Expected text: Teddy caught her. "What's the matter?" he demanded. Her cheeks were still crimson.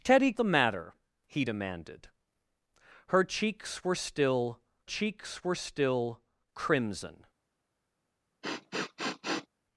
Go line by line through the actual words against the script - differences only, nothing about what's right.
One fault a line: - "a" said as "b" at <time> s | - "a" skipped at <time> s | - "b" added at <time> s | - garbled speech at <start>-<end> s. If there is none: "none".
- "caught her What's" skipped at 0.3 s
- "cheeks were still" added at 4.8 s